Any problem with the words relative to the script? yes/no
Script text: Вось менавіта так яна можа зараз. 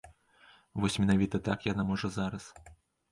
no